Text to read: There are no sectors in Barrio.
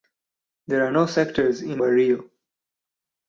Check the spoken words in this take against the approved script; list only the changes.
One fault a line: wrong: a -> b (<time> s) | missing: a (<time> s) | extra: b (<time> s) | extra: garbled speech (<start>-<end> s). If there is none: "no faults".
no faults